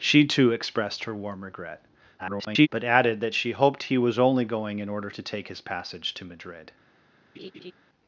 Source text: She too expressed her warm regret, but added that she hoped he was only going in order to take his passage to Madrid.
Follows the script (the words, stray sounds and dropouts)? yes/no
no